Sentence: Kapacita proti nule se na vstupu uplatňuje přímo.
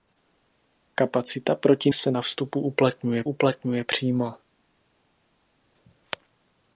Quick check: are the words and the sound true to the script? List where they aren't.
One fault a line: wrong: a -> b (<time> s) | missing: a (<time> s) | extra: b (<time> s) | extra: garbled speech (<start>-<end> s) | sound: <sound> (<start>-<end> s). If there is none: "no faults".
missing: nule (1.9 s)
extra: uplatňuje (3.2 s)